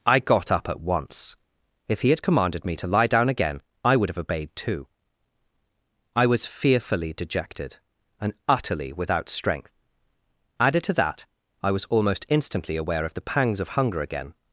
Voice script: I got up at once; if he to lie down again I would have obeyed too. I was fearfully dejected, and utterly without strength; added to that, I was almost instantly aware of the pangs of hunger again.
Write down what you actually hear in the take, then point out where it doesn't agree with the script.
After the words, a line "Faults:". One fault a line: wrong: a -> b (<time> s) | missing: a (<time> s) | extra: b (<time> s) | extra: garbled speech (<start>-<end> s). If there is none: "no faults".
I got up at once; if he had commanded me to lie down again I would have obeyed too. I was fearfully dejected, and utterly without strength; added to that, I was almost instantly aware of the pangs of hunger again.
Faults:
extra: had commanded me (2.1 s)